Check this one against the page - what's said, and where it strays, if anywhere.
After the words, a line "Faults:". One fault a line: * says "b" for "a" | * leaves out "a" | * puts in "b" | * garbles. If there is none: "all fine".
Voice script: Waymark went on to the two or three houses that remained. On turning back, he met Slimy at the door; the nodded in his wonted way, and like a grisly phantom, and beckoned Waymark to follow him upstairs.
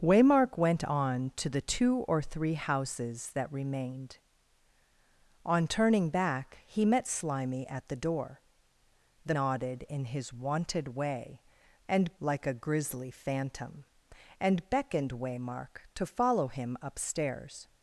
Waymark went on to the two or three houses that remained. On turning back, he met Slimy at the door; the nodded in his wonted way, and like a grisly phantom, and beckoned Waymark to follow him upstairs.
Faults:
all fine